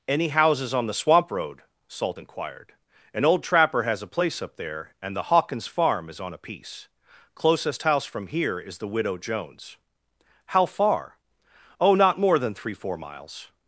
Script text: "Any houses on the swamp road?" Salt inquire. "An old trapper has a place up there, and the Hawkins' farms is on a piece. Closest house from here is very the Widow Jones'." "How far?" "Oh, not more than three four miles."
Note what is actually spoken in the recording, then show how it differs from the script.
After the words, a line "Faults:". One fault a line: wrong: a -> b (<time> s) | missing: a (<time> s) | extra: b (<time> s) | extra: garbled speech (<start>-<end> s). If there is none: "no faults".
"Any houses on the swamp road?" Salt inquired. "An old trapper has a place up there, and the Hawkins' farm is on a piece. Closest house from here is the Widow Jones'." "How far?" "Oh, not more than three four miles."
Faults:
wrong: inquire -> inquired (2.2 s)
wrong: farms -> farm (5.7 s)
missing: very (8.8 s)